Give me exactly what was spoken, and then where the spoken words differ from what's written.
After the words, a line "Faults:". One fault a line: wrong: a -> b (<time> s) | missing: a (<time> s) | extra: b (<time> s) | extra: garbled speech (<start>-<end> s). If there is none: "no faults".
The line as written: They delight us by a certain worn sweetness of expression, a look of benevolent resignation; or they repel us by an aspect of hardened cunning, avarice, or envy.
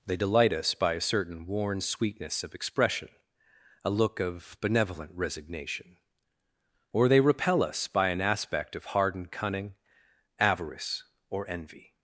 They delight us by a certain worn sweetness of expression, a look of benevolent resignation; or they repel us by an aspect of hardened cunning, avarice, or envy.
Faults:
no faults